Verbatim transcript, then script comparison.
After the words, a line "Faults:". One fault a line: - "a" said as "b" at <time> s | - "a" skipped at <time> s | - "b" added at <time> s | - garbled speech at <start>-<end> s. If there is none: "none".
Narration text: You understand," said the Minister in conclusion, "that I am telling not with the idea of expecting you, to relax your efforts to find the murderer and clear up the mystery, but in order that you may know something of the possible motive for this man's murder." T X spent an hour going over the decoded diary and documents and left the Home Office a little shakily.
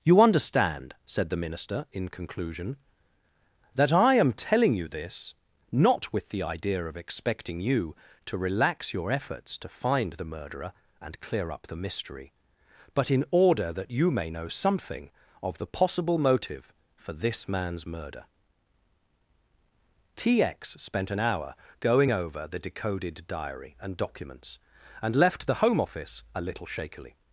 You understand," said the Minister in conclusion, "that I am telling you this, not with the idea of expecting you, to relax your efforts to find the murderer and clear up the mystery, but in order that you may know something of the possible motive for this man's murder." T X spent an hour going over the decoded diary and documents and left the Home Office a little shakily.
Faults:
- "you this" added at 4.7 s